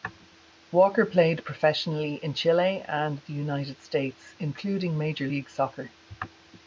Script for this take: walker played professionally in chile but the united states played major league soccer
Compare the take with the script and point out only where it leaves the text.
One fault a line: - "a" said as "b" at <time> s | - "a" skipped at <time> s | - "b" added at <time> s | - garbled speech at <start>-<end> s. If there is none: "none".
- "but" said as "and" at 2.9 s
- "played" said as "including" at 4.4 s